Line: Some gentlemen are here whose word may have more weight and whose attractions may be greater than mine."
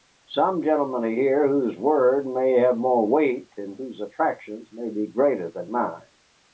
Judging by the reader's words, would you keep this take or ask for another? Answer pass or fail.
pass